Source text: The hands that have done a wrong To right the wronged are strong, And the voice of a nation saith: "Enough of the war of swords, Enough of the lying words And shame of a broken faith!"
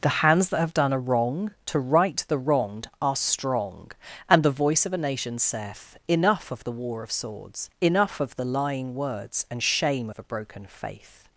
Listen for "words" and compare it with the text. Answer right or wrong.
right